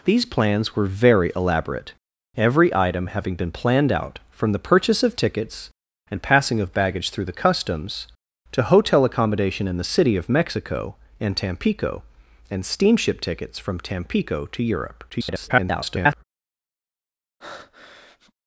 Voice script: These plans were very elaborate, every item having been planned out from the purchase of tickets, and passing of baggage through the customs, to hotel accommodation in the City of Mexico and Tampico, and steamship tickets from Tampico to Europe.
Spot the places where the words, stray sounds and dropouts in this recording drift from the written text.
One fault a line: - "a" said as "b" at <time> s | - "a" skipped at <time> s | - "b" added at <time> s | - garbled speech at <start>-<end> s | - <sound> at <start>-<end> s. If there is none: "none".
- garbled speech at 15.1-16.2 s
- breath at 17.4-18.3 s